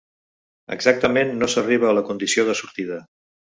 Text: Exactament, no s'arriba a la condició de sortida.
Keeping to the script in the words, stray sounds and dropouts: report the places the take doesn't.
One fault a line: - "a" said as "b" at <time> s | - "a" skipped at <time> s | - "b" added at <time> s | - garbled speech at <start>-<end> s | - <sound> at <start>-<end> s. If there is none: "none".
none